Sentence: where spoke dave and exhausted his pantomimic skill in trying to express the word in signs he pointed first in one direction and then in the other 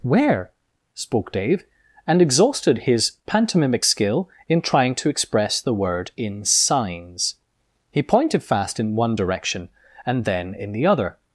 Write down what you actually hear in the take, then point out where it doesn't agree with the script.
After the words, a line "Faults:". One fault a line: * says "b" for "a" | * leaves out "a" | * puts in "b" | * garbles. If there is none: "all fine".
where spoke dave and exhausted his pantomimic skill in trying to express the word in signs he pointed fast in one direction and then in the other
Faults:
* says "fast" for "first"